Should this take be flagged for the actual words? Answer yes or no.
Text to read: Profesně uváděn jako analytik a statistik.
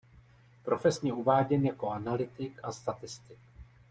no